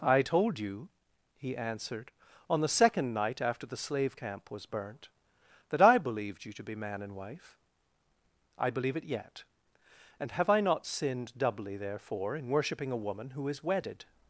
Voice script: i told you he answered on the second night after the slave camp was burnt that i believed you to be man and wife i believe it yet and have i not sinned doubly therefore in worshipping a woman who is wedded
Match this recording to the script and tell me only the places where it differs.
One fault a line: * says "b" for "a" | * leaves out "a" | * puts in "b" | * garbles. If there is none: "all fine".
all fine